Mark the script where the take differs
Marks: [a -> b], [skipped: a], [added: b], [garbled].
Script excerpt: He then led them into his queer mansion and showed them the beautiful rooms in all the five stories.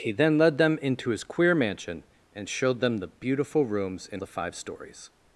He then led them into his queer mansion and showed them the beautiful rooms in [skipped: all] the five stories.